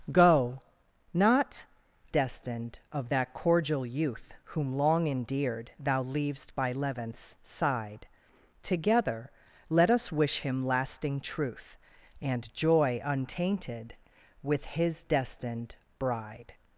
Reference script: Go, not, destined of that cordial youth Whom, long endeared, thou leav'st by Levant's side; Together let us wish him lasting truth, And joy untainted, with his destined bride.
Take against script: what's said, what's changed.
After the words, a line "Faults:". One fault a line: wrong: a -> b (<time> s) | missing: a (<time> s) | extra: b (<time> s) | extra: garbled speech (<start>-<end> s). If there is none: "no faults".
Go, not, destined of that cordial youth Whom, long endeared, thou leav'st by Levant's side; Together let us wish him lasting truth, And joy untainted, with his destined bride.
Faults:
no faults